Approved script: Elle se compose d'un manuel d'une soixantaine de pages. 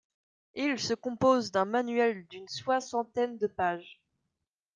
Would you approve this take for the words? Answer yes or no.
no